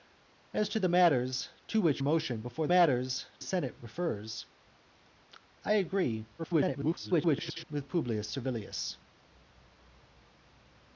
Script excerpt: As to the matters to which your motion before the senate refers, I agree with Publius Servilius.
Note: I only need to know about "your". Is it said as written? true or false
false